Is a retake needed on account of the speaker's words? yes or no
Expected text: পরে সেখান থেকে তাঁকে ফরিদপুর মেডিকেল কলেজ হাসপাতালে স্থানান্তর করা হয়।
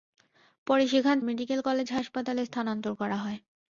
yes